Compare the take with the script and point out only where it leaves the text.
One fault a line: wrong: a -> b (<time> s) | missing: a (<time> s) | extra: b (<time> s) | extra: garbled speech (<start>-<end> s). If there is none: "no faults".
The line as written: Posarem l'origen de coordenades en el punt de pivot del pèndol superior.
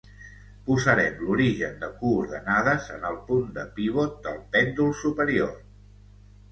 no faults